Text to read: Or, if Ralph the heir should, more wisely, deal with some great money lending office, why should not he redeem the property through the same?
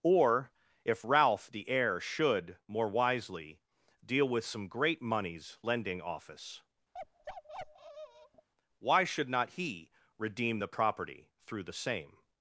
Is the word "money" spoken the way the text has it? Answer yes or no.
no